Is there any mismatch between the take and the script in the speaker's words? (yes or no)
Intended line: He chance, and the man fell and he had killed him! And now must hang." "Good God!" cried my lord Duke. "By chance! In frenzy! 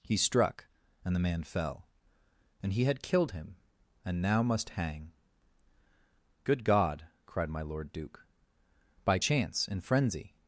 yes